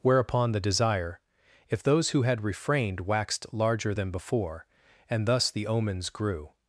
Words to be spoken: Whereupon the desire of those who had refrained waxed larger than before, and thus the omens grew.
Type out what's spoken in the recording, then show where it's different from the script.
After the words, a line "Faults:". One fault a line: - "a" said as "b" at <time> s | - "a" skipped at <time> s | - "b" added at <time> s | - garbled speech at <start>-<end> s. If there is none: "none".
Whereupon the desire if those who had refrained waxed larger than before, and thus the omens grew.
Faults:
- "of" said as "if" at 1.7 s